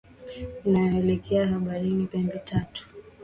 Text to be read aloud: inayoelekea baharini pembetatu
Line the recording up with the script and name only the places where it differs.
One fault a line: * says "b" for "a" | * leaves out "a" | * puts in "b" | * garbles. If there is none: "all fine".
all fine